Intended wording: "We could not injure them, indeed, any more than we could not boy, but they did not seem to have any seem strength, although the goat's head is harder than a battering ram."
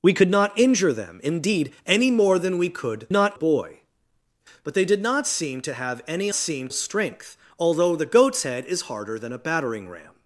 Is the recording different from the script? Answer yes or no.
no